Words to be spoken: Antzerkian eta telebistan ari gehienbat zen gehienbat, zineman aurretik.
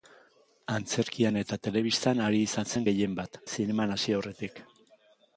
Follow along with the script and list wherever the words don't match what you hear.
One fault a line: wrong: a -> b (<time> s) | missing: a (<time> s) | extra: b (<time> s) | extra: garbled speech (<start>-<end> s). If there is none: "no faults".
wrong: gehienbat -> izan (2.5 s)
extra: hasi (4.0 s)